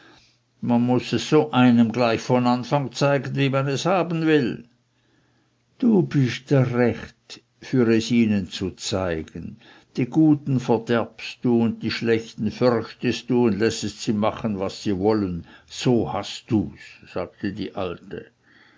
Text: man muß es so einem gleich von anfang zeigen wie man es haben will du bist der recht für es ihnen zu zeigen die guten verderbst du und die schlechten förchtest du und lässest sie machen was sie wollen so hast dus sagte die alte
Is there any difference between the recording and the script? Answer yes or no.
no